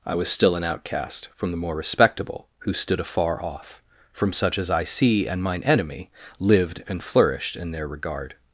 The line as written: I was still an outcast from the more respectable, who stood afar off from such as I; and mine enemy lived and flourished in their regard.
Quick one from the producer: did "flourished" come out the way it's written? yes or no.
yes